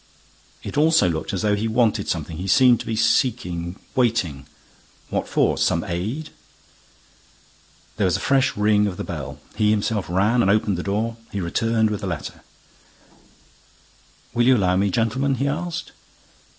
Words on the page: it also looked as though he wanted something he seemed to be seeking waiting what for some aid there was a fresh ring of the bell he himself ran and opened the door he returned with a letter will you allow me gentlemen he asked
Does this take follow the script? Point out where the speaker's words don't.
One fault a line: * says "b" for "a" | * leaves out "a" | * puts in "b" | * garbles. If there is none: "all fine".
all fine